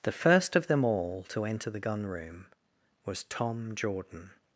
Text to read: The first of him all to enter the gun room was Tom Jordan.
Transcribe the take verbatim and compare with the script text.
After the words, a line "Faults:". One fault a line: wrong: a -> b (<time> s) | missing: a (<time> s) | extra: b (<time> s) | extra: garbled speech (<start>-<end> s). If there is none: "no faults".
The first of them all to enter the gun room was Tom Jordan.
Faults:
wrong: him -> them (0.7 s)